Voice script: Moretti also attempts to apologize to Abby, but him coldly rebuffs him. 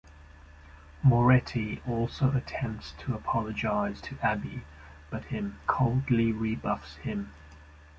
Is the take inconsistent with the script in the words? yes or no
no